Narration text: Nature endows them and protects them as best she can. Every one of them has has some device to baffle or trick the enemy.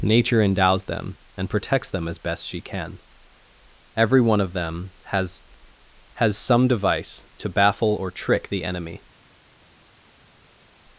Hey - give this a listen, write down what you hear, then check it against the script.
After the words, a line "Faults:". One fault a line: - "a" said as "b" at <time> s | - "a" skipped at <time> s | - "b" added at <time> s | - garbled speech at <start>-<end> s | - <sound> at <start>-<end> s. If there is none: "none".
Nature endows them and protects them as best she can. Every one of them has has some device to baffle or trick the enemy.
Faults:
none